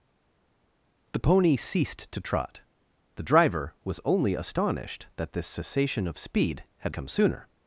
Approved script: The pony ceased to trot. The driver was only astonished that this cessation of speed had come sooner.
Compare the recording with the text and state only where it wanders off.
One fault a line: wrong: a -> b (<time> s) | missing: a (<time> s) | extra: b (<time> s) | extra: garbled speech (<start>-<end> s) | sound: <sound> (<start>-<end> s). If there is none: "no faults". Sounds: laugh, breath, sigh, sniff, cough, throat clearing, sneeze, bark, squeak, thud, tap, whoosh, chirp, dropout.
no faults